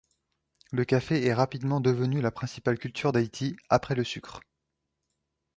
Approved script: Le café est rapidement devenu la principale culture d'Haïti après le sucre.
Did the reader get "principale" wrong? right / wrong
right